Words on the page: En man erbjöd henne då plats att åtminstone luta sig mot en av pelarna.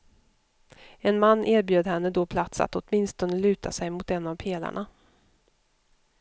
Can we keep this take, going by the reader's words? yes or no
yes